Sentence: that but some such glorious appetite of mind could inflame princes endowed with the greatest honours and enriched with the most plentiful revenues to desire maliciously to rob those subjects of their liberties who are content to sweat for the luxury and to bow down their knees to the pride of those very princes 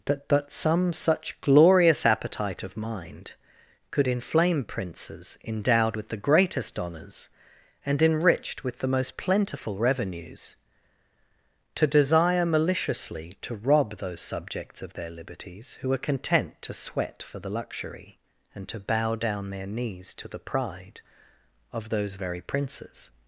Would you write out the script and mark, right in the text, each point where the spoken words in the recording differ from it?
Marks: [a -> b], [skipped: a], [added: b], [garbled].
that but some such glorious appetite of mind could inflame princes endowed with the greatest honours and enriched with the most plentiful revenues to desire maliciously to rob those subjects of their liberties who are content to sweat for the luxury and to bow down their knees to the pride of those very princes